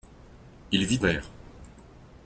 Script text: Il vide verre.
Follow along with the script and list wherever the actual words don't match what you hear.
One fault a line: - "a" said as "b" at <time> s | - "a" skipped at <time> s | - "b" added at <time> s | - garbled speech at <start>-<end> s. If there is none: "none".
none